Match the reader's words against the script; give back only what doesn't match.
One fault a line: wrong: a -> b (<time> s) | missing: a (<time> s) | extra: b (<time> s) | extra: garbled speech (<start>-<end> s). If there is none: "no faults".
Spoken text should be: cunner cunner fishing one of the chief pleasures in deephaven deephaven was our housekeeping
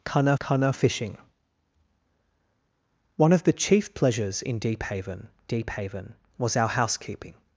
no faults